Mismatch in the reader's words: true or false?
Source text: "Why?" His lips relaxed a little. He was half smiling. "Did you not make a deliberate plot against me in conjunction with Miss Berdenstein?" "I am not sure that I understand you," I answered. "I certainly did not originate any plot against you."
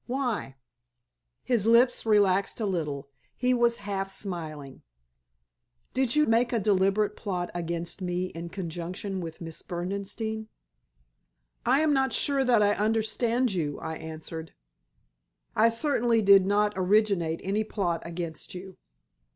true